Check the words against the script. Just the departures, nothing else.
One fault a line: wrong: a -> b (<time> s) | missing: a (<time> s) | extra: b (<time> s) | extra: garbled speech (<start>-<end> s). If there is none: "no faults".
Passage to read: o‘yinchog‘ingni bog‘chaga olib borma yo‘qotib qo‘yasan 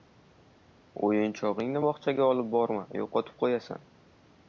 no faults